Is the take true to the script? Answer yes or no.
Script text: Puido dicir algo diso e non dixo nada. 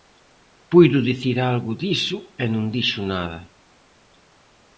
yes